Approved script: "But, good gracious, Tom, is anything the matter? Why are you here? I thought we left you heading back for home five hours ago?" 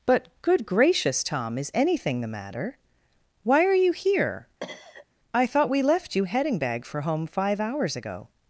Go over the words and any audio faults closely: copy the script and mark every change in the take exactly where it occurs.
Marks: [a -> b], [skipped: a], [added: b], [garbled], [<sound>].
"But, good gracious, Tom, is anything the matter? Why are you here? [cough] I thought we left you heading [back -> bag] for home five hours ago?"